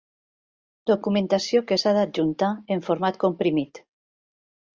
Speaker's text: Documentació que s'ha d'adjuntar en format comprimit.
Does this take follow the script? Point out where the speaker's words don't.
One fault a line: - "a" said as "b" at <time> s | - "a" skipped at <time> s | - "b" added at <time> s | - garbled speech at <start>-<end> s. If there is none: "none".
none